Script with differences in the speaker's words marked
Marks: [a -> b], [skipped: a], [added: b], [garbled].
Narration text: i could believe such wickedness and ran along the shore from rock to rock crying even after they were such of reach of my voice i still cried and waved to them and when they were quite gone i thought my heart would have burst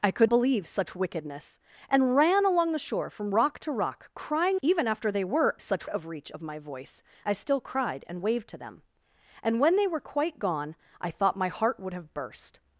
i could believe such wickedness and ran along the shore from rock to rock crying even after they were such of reach of my voice i still cried and waved to them and when they were quite gone i thought my heart would have burst